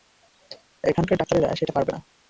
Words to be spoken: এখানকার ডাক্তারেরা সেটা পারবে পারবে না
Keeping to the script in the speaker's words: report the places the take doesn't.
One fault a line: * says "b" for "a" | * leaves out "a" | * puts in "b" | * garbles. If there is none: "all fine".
* leaves out "পারবে"